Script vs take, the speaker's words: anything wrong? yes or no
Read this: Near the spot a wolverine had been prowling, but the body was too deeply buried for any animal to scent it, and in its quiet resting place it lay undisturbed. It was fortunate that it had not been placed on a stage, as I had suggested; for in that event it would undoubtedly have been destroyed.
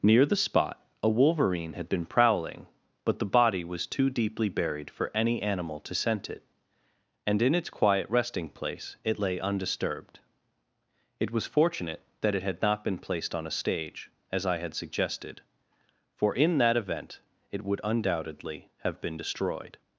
no